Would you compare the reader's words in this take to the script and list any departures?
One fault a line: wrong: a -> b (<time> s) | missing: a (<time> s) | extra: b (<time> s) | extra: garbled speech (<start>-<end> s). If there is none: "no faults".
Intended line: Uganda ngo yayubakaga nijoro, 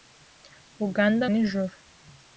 missing: ngo yayubakaga (1.2 s)